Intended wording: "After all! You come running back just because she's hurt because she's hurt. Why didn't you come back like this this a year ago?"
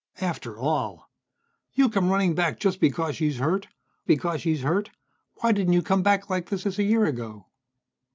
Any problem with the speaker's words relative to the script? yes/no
no